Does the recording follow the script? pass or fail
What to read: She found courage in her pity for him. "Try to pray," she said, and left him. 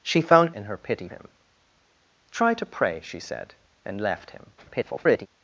fail